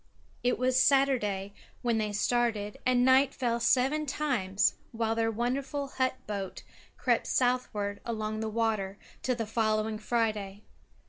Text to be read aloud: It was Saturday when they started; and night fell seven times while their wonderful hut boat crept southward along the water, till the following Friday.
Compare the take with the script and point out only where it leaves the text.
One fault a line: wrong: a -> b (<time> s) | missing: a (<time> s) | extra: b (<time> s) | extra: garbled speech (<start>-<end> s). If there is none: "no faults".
no faults